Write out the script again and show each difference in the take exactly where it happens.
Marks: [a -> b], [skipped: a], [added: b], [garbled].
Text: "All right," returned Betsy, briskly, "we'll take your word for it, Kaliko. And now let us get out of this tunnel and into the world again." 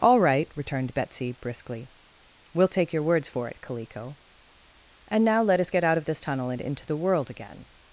"All right," returned Betsy, briskly, "we'll take your [word -> words] for it, Kaliko. And now let us get out of this tunnel and into the world again."